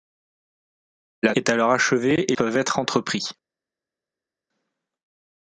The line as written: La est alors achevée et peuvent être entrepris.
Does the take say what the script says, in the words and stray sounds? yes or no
yes